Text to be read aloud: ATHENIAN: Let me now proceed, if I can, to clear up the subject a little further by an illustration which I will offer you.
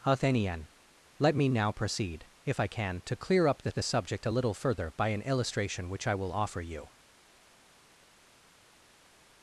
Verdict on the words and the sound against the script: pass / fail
fail